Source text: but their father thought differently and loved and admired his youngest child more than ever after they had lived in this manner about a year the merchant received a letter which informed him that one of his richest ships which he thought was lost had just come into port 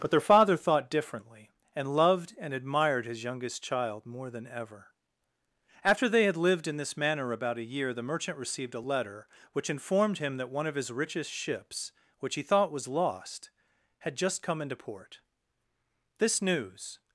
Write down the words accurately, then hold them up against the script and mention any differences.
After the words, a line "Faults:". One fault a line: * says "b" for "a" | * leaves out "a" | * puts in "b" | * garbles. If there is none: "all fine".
but their father thought differently and loved and admired his youngest child more than ever after they had lived in this manner about a year the merchant received a letter which informed him that one of his richest ships which he thought was lost had just come into port this news
Faults:
* puts in "this news"